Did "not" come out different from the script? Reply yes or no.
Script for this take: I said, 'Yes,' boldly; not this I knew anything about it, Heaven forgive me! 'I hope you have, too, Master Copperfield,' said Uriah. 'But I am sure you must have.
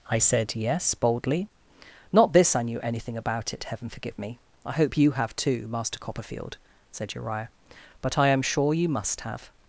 no